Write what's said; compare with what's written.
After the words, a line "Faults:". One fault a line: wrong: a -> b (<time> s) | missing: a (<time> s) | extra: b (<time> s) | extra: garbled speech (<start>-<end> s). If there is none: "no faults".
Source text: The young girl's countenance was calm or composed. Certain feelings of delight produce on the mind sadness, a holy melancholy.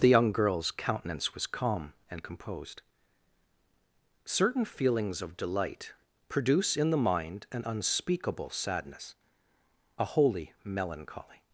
The young girl's countenance was calm and composed. Certain feelings of delight produce in the mind an unspeakable sadness, a holy melancholy.
Faults:
wrong: or -> and (2.1 s)
wrong: on -> in (6.8 s)
extra: an unspeakable (7.5 s)